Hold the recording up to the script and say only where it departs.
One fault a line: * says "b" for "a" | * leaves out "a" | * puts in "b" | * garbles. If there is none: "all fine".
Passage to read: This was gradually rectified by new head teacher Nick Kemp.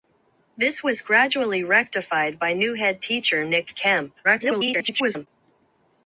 * garbles